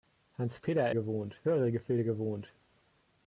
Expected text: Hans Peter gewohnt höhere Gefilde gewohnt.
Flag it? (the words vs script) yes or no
no